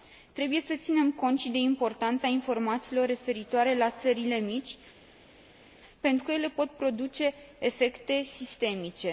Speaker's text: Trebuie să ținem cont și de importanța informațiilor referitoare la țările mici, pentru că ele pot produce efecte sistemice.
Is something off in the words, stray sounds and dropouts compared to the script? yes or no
no